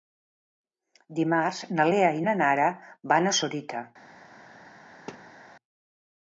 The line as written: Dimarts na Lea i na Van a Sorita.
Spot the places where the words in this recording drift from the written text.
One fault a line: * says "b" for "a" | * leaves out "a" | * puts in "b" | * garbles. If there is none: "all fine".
* puts in "Nara"